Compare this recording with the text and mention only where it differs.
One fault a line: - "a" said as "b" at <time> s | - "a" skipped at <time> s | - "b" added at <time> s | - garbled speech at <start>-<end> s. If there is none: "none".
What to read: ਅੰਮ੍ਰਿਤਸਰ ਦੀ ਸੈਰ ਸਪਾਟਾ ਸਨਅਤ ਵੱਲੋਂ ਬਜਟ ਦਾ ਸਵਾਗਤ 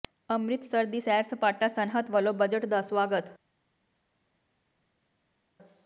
none